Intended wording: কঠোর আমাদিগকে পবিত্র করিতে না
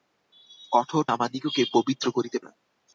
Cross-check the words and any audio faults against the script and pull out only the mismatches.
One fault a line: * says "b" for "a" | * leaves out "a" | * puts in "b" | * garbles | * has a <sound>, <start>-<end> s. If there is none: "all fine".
all fine